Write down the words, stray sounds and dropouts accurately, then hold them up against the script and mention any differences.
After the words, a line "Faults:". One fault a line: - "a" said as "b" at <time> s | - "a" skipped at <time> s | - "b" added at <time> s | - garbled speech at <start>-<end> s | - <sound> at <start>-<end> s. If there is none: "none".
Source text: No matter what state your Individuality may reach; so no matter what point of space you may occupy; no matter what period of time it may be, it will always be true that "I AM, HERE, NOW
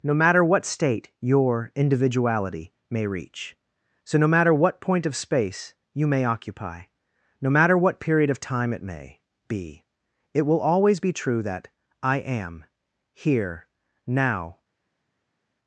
No matter what state your Individuality may reach; so no matter what point of space you may occupy; no matter what period of time it may be, it will always be true that "I AM, HERE, NOW
Faults:
none